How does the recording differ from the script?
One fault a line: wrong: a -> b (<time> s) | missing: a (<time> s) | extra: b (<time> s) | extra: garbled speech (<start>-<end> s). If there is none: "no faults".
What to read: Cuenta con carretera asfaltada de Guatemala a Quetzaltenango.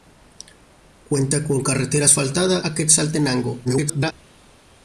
missing: de Guatemala (2.6 s)
extra: garbled speech (3.6-4.1 s)